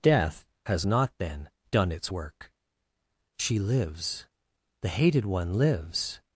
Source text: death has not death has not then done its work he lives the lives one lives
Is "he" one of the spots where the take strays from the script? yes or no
yes